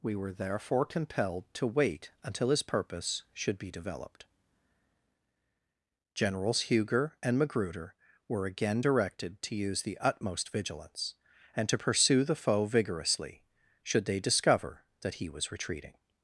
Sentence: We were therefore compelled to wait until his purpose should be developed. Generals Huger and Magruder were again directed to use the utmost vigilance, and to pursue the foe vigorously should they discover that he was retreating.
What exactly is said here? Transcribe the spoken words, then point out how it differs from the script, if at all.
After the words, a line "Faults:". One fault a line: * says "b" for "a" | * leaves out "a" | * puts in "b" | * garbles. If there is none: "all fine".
We were therefore compelled to wait until his purpose should be developed. Generals Huger and Magruder were again directed to use the utmost vigilance, and to pursue the foe vigorously should they discover that he was retreating.
Faults:
all fine